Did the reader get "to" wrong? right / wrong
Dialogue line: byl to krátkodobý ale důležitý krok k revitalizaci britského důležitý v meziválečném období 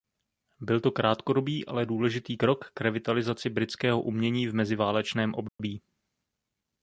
right